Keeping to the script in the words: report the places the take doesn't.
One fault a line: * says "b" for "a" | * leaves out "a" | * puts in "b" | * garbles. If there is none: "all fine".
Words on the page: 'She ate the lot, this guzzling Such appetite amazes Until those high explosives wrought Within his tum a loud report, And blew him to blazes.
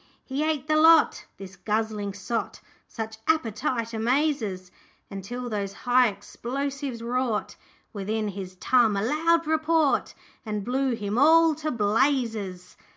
* says "He" for "She"
* puts in "sot"
* puts in "all"